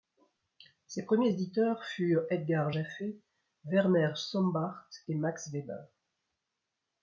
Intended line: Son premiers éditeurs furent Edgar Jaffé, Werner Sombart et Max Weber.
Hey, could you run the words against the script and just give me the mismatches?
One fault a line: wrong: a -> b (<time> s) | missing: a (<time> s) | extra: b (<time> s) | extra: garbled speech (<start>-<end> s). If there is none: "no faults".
wrong: Son -> Ses (0.9 s)